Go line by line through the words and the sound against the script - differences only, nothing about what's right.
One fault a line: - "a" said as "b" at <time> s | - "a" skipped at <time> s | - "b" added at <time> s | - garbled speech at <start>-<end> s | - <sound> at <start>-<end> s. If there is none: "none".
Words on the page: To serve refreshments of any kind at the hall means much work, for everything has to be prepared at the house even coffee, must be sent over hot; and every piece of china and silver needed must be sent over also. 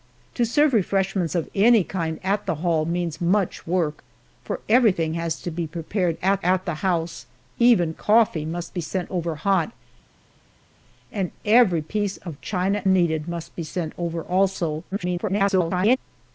- "at" added at 6.4 s
- "and silver" skipped at 12.8 s
- garbled speech at 14.9-16.0 s